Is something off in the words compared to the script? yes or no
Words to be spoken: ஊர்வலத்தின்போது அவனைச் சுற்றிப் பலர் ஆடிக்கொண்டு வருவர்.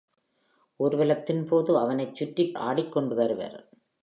yes